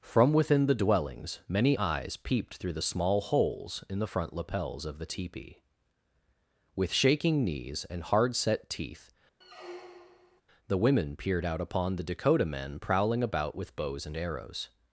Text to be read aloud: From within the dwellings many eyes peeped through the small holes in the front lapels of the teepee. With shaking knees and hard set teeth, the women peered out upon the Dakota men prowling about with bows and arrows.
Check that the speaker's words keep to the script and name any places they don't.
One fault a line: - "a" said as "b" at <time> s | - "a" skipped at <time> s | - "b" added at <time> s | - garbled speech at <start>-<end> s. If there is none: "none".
none